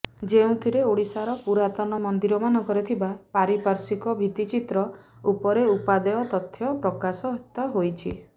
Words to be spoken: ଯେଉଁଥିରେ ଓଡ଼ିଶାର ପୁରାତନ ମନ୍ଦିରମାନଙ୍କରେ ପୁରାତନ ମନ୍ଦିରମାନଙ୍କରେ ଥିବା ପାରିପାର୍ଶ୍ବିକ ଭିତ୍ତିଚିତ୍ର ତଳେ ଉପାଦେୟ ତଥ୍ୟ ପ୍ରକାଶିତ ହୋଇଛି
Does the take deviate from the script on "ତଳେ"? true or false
true